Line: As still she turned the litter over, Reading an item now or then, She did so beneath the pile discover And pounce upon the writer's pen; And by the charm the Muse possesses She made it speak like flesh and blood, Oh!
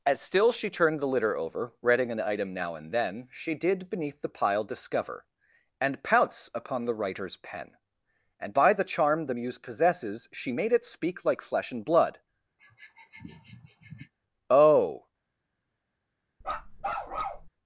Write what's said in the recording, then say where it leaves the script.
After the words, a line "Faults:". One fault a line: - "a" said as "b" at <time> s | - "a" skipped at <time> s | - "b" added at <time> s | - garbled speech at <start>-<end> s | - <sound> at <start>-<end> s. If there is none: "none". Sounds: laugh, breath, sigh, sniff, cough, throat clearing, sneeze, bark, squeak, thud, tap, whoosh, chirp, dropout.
As still she turned the litter over, Reading an item now and then, She did beneath the pile discover And pounce upon the writer's pen; And by the charm the Muse possesses She made it speak like flesh and blood, Oh!
Faults:
- "or" said as "and" at 2.7 s
- "so" skipped at 3.9 s
- sniff at 12.6-14.1 s
- bark at 16.4-17.5 s